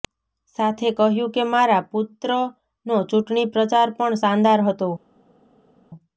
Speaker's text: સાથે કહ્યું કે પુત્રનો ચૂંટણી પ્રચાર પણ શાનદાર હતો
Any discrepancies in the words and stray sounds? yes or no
yes